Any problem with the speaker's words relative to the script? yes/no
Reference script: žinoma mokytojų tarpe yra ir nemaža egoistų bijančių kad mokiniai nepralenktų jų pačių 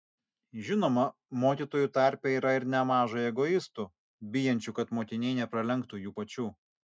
no